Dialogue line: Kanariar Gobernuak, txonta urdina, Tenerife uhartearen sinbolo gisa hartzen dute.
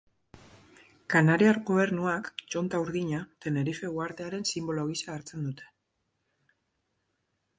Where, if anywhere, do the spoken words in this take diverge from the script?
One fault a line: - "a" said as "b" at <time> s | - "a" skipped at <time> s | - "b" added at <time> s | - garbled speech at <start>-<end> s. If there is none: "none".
none